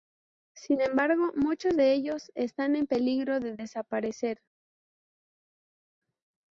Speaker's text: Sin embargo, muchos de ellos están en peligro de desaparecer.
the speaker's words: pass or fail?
pass